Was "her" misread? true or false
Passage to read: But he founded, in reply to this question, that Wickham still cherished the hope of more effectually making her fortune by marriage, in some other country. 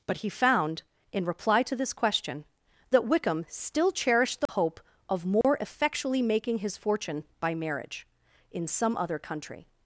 true